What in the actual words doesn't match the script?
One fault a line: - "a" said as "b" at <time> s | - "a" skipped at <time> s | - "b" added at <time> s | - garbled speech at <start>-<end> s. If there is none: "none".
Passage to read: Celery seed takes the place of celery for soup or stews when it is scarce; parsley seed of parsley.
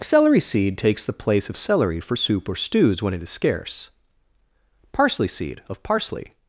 none